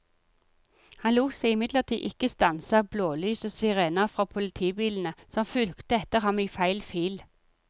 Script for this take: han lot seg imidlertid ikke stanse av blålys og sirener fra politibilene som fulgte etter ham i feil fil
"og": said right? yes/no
yes